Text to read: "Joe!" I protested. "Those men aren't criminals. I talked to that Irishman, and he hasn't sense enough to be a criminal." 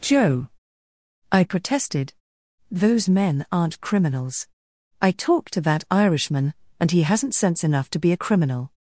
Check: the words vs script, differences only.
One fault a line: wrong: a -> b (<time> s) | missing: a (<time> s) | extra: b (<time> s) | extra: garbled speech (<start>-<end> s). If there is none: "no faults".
no faults